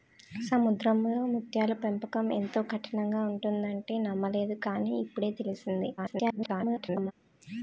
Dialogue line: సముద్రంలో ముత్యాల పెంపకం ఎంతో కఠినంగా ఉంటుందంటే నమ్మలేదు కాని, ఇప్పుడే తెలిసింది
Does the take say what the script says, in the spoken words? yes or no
no